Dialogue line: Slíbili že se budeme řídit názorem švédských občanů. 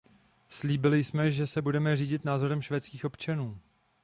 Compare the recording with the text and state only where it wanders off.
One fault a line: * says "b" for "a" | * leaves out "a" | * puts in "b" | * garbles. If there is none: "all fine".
* puts in "jsme"